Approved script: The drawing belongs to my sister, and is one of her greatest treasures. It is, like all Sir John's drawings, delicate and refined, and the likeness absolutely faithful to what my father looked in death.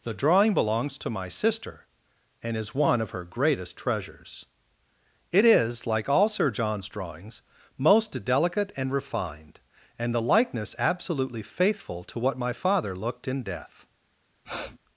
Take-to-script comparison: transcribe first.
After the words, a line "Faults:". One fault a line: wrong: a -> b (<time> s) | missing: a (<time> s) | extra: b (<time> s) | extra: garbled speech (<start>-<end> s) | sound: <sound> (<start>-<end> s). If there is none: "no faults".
The drawing belongs to my sister, and is one of her greatest treasures. It is, like all Sir John's drawings, most delicate and refined, and the likeness absolutely faithful to what my father looked in death.
Faults:
extra: most (7.8 s)
sound: sniff (14.4-14.8 s)